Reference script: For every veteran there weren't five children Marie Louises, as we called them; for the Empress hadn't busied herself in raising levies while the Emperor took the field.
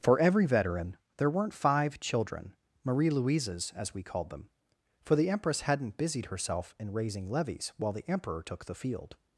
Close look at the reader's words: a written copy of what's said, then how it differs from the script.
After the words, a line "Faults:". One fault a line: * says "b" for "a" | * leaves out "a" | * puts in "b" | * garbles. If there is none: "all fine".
For every veteran there weren't five children Marie Louises, as we called them; for the Empress hadn't busied herself in raising levies while the Emperor took the field.
Faults:
all fine